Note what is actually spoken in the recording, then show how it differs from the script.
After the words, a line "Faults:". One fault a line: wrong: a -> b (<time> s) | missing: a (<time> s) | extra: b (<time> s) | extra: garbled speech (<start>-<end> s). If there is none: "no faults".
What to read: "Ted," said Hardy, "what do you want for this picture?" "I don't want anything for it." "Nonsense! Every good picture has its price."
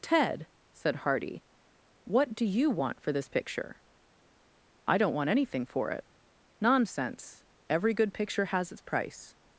"Ted," said Hardy, "what do you want for this picture?" "I don't want anything for it." "Nonsense! Every good picture has its price."
Faults:
no faults